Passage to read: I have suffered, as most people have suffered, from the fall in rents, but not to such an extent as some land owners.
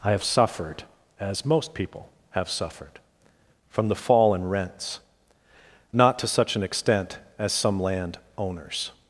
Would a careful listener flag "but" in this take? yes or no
yes